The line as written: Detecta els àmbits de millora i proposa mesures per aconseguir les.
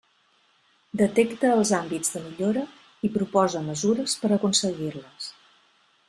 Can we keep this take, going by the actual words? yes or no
yes